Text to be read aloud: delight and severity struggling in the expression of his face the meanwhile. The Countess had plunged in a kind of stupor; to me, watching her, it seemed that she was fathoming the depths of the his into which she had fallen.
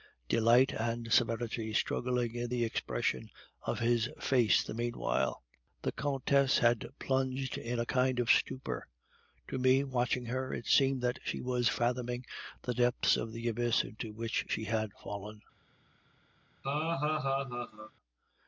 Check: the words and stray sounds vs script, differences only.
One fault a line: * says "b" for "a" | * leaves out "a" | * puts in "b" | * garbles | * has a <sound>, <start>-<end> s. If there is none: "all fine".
* says "abyss" for "his"
* has a laugh, 16.6-17.9 s